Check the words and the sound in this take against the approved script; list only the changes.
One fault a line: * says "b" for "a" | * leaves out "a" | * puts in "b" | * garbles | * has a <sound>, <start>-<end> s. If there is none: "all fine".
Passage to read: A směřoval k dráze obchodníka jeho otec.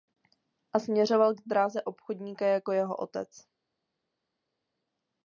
* puts in "jako"